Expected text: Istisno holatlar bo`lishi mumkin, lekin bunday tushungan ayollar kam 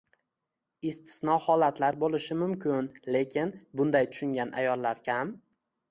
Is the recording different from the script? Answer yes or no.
no